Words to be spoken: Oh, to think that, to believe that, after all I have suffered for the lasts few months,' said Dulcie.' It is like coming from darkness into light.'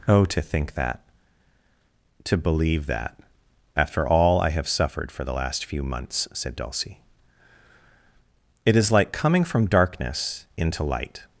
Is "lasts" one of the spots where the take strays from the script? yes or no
yes